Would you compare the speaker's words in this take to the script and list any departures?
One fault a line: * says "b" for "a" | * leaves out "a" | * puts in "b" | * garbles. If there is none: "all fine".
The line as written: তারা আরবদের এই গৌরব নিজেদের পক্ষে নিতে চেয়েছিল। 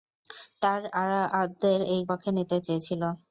* leaves out "গৌরব নিজেদের"